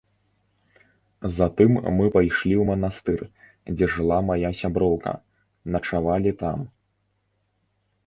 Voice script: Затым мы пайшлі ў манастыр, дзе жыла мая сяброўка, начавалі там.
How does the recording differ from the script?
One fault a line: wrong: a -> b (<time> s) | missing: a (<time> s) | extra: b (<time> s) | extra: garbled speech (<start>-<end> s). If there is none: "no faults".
no faults